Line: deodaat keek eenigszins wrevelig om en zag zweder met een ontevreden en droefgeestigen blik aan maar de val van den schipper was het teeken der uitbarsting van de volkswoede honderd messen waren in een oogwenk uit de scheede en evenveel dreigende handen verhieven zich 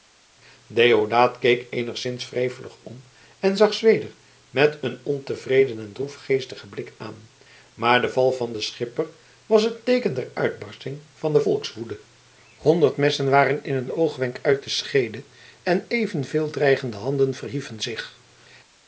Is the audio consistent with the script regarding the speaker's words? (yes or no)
yes